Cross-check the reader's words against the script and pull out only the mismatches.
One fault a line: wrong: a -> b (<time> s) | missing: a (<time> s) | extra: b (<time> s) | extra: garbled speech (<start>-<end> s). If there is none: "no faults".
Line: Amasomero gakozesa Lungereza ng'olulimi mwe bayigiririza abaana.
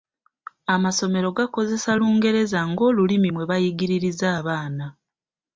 no faults